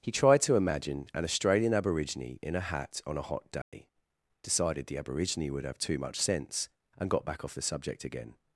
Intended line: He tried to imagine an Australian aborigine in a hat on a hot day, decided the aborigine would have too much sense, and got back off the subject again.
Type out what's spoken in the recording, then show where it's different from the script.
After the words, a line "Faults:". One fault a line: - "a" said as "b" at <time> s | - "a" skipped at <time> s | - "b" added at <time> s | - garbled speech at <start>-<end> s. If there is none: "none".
He tried to imagine an Australian aborigine in a hat on a hot day, decided the aborigine would have too much sense, and got back off the subject again.
Faults:
none